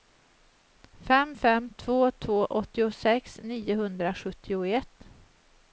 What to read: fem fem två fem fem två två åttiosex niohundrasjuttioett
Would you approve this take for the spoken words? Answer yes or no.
no